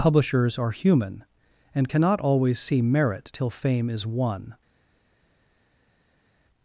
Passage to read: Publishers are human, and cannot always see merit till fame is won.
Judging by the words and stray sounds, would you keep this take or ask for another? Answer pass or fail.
pass